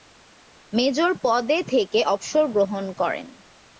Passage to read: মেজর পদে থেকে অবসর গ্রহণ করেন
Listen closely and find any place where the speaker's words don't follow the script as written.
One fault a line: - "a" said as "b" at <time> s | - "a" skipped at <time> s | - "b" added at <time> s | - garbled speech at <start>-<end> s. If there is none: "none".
none